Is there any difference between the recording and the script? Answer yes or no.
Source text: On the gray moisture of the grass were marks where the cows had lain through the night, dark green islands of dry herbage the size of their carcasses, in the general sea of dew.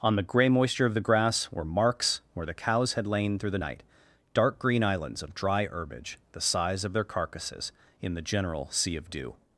no